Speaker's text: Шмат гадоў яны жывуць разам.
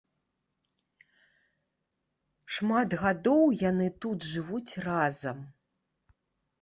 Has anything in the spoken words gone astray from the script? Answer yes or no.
yes